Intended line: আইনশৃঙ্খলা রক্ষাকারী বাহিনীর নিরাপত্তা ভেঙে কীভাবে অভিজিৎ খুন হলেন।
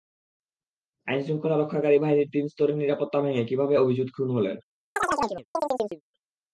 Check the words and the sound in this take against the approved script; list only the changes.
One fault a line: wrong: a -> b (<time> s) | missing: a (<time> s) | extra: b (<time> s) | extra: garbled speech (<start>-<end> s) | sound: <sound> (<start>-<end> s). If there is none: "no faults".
extra: তিন স্তরের (2.3 s)
sound: chirp (5.0-6.0 s)